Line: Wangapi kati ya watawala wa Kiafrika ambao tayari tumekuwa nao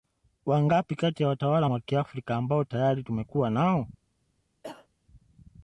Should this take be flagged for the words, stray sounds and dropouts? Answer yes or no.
yes